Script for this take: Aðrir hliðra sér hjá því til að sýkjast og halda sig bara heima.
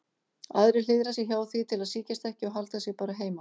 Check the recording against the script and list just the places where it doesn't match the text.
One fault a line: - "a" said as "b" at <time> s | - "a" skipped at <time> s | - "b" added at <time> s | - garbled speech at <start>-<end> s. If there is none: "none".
- "ekki" added at 2.3 s